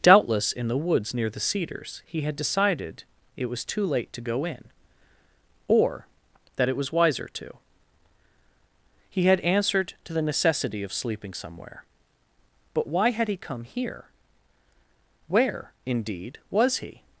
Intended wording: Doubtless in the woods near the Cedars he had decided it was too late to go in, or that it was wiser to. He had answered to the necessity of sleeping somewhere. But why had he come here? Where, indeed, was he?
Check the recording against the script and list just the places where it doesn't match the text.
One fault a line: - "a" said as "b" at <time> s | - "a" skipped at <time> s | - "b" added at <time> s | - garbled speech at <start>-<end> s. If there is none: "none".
none